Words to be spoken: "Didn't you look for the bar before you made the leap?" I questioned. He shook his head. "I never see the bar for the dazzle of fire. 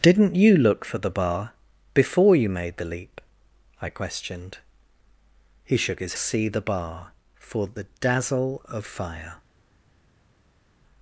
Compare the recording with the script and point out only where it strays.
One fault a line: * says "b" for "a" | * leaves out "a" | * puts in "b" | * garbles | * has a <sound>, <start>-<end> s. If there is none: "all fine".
* leaves out "head I never"